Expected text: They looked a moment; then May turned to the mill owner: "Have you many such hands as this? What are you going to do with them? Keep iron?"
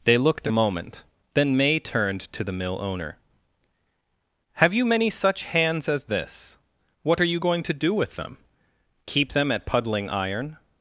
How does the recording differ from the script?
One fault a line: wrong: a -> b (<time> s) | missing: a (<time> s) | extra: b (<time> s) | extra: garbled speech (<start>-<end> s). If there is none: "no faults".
extra: them at puddling (9.3 s)